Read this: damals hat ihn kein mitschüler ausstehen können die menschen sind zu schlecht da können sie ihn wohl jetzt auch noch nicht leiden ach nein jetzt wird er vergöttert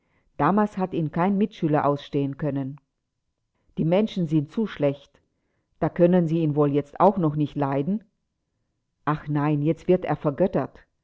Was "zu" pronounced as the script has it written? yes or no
yes